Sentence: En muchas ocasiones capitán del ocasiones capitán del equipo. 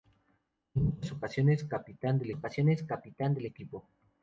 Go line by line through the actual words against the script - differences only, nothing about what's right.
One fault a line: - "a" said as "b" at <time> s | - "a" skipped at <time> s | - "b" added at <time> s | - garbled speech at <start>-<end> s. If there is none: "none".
none